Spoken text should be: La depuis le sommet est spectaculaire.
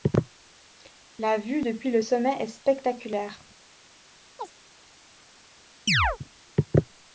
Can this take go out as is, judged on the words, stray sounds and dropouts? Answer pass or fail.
fail